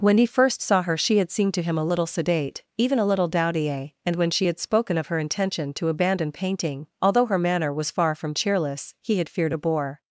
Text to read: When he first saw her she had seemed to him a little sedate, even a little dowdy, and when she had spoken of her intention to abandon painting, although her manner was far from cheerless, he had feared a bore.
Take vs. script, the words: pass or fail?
pass